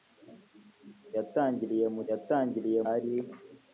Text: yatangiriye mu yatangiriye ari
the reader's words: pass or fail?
pass